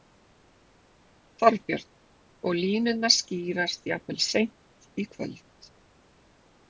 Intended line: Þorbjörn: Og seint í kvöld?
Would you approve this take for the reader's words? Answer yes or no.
no